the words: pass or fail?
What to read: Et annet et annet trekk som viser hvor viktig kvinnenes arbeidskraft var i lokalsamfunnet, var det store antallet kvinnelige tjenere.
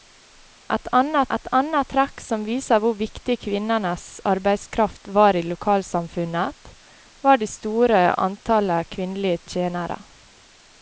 pass